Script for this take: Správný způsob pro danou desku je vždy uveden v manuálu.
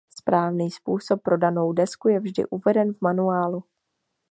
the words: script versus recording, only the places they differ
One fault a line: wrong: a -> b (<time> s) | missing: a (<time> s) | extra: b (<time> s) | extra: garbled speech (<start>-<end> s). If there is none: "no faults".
no faults